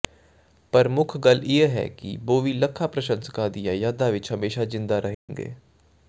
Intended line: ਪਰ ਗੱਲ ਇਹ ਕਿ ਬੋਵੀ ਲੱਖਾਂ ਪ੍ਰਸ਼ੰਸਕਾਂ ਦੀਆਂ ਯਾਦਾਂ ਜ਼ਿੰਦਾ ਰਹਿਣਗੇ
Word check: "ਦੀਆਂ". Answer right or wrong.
right